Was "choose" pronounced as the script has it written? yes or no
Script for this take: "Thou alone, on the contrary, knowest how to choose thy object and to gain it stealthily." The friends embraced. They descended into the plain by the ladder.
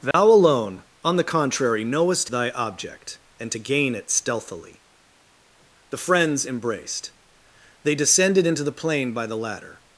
no